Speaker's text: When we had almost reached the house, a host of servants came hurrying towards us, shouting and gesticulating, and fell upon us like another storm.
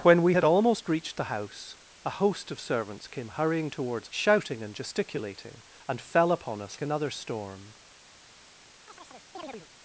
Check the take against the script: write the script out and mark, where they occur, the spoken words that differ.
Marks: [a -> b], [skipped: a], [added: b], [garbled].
When we had almost reached the house, a host of servants came hurrying towards [skipped: us,] shouting and gesticulating, and fell upon us [skipped: like] another storm.